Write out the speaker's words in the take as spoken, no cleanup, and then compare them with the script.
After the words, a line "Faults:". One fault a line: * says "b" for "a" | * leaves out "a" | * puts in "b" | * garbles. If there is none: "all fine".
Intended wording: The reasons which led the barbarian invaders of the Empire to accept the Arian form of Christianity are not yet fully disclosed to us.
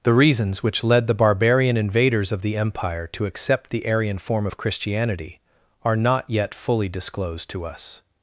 The reasons which led the barbarian invaders of the Empire to accept the Arian form of Christianity are not yet fully disclosed to us.
Faults:
all fine